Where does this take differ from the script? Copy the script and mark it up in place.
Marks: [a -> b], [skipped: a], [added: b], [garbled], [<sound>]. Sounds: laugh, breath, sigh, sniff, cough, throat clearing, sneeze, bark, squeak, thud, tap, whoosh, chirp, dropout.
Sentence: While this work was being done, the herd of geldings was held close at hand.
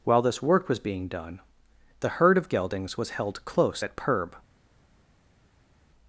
While this work was being done, the herd of geldings was held close at [hand. -> perb]